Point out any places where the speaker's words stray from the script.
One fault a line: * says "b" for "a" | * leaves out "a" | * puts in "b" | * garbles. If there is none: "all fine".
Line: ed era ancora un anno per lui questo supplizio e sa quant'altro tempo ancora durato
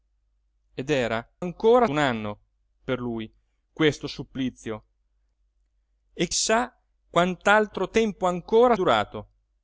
all fine